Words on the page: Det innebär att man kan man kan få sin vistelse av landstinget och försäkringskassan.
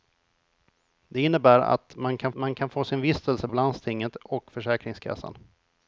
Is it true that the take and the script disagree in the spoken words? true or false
false